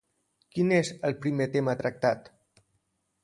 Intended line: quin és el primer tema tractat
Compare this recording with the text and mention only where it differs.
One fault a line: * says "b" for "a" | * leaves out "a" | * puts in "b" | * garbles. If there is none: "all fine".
all fine